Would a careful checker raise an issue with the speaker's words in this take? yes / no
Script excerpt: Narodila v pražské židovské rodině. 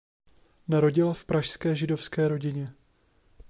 no